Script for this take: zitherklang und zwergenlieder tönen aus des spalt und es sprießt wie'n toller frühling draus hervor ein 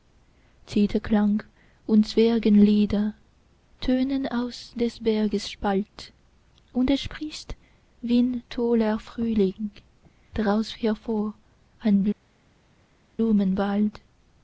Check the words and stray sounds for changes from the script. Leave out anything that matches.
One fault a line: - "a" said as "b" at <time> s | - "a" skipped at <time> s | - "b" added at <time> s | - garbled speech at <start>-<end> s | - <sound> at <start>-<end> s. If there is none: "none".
- "berges" added at 5.0 s